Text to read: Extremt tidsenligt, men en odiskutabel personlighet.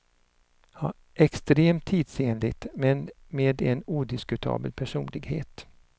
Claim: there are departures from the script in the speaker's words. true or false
true